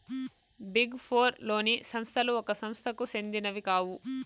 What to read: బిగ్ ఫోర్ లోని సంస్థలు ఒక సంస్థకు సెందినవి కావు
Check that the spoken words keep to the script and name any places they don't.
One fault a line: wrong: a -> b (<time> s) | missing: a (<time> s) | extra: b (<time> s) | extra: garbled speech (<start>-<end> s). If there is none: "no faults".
no faults